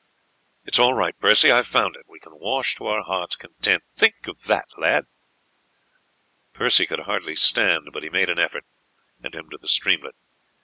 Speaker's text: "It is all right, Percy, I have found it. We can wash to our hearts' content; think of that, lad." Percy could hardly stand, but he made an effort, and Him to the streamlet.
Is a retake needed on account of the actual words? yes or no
no